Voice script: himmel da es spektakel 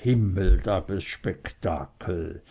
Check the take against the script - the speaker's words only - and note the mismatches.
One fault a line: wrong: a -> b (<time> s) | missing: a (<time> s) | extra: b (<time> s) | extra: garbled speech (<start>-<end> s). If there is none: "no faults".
no faults